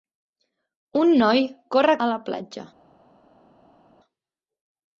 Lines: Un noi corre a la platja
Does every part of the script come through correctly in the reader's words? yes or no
yes